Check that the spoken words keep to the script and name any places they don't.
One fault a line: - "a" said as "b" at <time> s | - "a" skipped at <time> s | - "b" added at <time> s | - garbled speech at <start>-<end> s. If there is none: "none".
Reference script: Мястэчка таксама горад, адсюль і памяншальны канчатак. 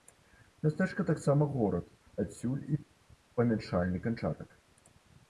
none